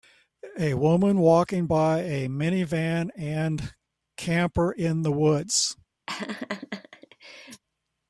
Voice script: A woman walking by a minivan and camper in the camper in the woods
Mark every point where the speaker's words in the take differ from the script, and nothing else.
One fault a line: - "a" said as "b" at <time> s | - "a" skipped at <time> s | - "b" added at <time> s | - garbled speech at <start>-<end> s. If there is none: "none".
- "camper in the" skipped at 5.1 s